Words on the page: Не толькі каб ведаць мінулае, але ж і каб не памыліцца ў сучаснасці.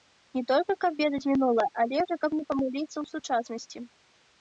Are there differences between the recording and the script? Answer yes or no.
no